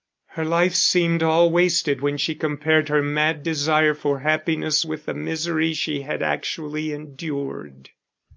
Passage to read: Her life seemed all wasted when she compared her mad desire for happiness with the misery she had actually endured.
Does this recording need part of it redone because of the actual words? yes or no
no